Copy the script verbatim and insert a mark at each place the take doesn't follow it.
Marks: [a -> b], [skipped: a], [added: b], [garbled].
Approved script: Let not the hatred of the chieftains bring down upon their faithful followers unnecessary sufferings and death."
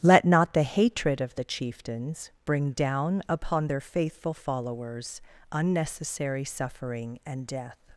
Let not the hatred of the chieftains bring down upon their faithful followers unnecessary [sufferings -> suffering] and death."